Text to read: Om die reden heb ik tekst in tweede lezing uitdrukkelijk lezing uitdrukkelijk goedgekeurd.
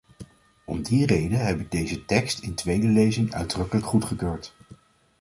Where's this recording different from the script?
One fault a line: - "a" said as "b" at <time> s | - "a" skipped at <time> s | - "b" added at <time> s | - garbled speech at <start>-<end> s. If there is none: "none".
- "deze" added at 1.7 s
- "lezing uitdrukkelijk" skipped at 3.9 s